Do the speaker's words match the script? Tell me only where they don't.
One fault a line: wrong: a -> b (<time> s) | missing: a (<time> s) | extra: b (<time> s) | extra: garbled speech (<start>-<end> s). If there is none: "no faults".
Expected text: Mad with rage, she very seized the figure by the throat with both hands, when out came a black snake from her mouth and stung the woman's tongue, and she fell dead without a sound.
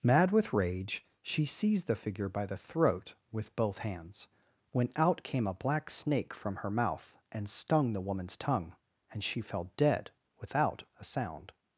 missing: very (1.4 s)